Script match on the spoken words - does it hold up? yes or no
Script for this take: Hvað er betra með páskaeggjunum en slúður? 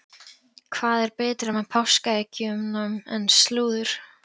yes